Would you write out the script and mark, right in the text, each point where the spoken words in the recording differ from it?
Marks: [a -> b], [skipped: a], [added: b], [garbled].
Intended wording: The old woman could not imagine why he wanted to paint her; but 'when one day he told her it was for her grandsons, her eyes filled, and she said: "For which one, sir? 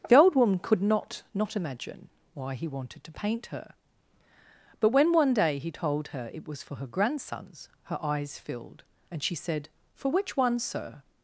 The old woman could not [added: not] imagine why he wanted to paint her; but 'when one day he told her it was for her grandsons, her eyes filled, and she said: "For which one, sir?